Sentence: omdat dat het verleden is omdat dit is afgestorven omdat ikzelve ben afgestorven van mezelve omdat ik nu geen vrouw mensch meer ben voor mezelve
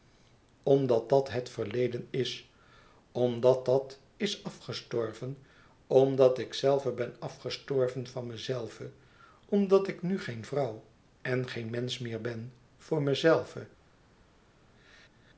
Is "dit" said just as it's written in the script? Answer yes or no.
no